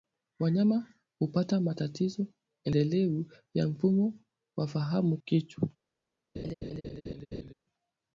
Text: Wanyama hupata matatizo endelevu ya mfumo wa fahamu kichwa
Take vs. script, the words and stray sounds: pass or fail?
fail